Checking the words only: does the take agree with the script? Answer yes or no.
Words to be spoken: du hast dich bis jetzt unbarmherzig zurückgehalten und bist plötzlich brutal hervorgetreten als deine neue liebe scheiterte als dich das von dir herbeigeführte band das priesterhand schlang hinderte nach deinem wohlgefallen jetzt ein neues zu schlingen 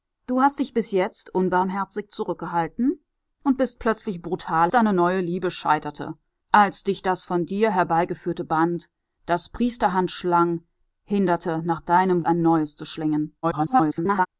no